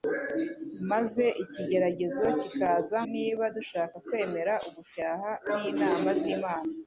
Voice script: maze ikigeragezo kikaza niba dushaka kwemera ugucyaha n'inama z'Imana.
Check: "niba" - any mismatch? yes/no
no